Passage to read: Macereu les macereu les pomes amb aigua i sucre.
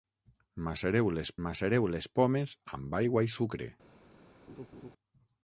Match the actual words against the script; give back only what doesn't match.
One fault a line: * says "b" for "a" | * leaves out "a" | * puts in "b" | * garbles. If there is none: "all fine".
all fine